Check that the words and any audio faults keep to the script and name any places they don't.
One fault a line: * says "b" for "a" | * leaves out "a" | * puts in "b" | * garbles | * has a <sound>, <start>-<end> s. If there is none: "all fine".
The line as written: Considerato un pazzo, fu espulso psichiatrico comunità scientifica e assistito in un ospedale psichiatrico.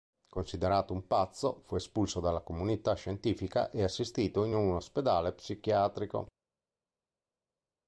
* says "dalla" for "psichiatrico"